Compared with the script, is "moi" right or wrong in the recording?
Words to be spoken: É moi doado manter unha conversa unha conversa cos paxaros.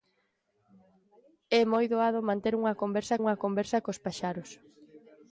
right